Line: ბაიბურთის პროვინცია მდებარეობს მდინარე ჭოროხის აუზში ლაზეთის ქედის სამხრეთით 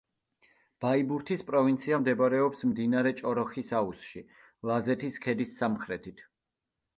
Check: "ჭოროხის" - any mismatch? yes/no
no